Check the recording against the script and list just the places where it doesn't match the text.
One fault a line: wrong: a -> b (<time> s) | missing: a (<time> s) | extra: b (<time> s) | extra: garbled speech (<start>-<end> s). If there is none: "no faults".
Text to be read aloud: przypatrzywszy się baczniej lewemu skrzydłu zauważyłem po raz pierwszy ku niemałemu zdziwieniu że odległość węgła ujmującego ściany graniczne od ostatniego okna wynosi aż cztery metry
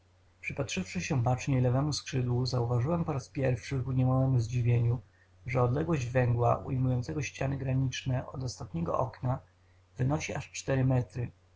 no faults